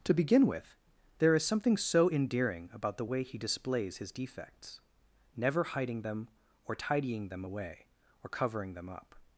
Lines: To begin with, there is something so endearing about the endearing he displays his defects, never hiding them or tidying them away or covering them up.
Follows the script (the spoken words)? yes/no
no